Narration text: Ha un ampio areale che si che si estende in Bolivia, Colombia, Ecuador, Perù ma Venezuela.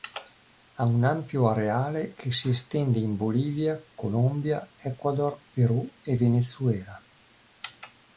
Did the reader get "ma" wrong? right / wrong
wrong